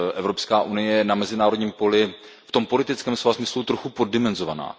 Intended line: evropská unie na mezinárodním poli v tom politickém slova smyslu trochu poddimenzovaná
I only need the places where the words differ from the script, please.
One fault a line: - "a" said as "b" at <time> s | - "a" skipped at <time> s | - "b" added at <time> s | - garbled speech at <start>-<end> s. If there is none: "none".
- "je" added at 0.9 s